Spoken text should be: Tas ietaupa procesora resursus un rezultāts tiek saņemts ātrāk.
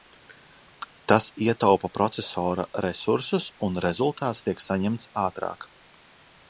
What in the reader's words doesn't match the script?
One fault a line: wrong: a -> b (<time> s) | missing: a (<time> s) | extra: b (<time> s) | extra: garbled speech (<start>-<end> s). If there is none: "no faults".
no faults